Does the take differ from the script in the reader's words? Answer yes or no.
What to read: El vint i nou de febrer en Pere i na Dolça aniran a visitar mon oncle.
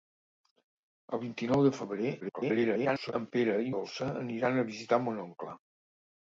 yes